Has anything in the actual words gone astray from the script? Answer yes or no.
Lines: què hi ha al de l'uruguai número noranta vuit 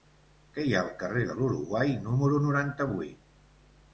yes